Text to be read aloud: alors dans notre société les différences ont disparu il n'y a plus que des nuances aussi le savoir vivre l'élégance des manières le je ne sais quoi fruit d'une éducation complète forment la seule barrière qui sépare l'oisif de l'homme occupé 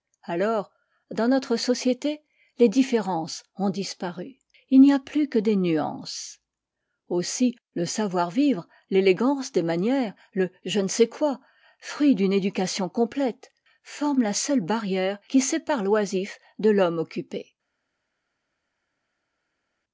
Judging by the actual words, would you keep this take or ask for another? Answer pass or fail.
pass